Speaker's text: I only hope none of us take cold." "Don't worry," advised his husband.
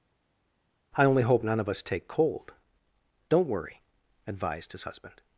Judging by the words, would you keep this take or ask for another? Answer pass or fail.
pass